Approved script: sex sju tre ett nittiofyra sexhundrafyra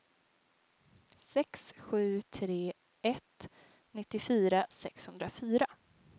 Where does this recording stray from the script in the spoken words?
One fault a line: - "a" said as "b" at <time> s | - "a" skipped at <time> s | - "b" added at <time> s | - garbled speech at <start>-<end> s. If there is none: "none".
none